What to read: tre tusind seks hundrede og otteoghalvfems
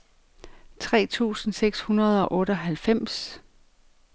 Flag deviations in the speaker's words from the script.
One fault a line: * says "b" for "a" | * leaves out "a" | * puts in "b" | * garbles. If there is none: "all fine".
all fine